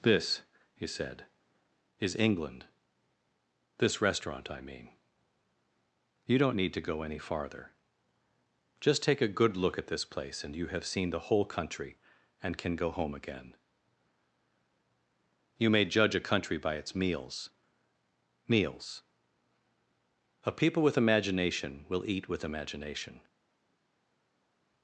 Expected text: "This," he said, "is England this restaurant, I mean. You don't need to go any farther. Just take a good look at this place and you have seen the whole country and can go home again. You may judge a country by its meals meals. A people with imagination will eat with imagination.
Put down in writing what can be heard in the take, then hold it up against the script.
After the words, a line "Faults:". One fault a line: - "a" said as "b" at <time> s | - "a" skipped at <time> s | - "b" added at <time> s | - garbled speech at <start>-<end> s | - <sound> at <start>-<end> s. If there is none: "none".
"This," he said, "is England this restaurant, I mean. You don't need to go any farther. Just take a good look at this place and you have seen the whole country and can go home again. You may judge a country by its meals meals. A people with imagination will eat with imagination.
Faults:
none